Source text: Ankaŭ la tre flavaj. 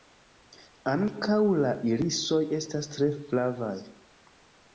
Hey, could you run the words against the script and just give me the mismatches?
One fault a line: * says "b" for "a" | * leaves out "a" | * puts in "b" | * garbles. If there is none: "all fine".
* puts in "irisoj estas"